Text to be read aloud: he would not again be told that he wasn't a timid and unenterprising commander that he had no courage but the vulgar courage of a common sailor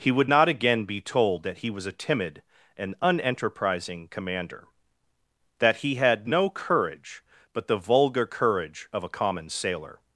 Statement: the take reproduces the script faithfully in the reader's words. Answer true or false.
false